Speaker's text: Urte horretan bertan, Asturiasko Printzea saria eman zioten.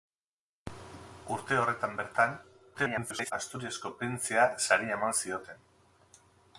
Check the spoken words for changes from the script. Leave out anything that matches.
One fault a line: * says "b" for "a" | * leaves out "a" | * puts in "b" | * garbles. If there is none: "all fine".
* garbles